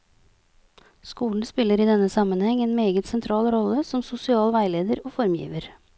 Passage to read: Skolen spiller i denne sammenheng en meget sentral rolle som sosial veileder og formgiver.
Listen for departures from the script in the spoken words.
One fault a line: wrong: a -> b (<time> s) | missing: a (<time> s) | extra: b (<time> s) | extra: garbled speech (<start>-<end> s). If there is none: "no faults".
no faults